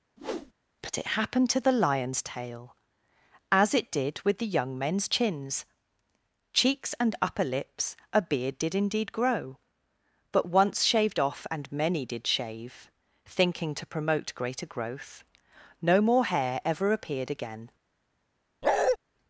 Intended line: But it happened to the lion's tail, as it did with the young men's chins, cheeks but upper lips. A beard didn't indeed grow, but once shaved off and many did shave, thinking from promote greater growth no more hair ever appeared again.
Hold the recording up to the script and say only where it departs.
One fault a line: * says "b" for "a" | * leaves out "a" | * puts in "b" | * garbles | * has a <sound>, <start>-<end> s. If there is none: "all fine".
* has a whoosh, 0.2-0.5 s
* says "and" for "but"
* says "did" for "didn't"
* says "to" for "from"
* has a bark, 18.6-19.0 s